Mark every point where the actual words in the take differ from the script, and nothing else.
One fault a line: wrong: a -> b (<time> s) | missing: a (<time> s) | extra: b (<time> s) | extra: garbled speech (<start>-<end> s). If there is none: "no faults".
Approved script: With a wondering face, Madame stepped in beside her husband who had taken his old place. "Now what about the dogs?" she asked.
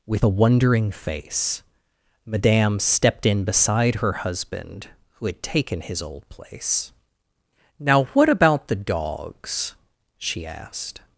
no faults